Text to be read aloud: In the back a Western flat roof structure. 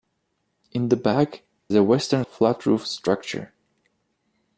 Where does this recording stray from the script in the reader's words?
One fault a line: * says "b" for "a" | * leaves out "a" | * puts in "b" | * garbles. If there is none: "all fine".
all fine